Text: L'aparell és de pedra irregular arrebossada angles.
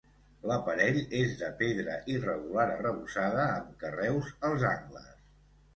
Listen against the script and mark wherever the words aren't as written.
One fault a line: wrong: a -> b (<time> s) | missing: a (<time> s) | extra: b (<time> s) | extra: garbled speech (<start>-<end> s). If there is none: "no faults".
extra: amb carreus als (3.6 s)